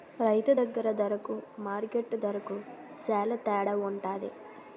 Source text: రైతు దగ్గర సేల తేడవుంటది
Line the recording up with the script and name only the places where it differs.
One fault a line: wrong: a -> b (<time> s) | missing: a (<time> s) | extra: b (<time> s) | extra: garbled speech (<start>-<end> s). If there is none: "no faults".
extra: దరకు మార్కెట్టు దరకు (1.0 s)